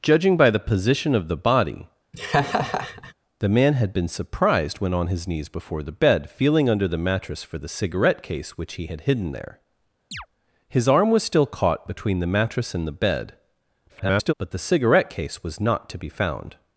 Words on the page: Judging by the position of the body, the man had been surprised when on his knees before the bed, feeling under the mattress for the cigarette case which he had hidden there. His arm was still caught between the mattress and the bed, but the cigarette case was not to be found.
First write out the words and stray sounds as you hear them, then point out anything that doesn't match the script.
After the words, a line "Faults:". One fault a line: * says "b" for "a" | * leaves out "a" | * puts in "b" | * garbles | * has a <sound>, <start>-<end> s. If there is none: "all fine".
Judging by the position of the body, the man had been surprised when on his knees before the bed, feeling under the mattress for the cigarette case which he had hidden there. His arm was still caught between the mattress and the bed, [garbled] but the cigarette case was not to be found.
Faults:
* has a laugh, 2.1-3.1 s
* has a chirp, 10.1-10.3 s
* garbles